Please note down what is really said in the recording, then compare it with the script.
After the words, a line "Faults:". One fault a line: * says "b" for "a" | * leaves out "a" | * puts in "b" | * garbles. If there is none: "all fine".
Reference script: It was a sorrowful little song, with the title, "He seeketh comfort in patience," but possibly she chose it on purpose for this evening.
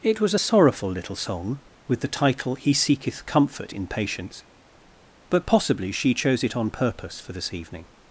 It was a sorrowful little song, with the title, "He seeketh comfort in patience," but possibly she chose it on purpose for this evening.
Faults:
all fine